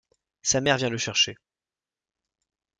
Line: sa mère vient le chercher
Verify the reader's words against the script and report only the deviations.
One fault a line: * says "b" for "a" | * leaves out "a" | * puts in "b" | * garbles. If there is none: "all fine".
all fine